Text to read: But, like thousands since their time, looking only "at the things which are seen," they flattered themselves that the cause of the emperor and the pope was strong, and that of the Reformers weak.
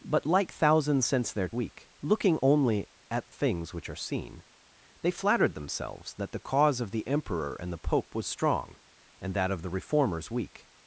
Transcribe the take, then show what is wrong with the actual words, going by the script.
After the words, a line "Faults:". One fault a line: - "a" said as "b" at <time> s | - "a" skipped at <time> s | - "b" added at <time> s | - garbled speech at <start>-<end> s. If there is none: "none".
But, like thousands since their weak, looking only "at things which are seen," they flattered themselves that the cause of the emperor and the pope was strong, and that of the Reformers weak.
Faults:
- "time" said as "weak" at 1.5 s
- "the" skipped at 3.3 s